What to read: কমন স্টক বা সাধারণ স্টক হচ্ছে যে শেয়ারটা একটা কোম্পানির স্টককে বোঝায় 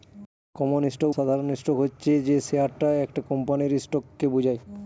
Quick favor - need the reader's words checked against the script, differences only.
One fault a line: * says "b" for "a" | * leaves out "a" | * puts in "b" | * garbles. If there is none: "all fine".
* leaves out "বা"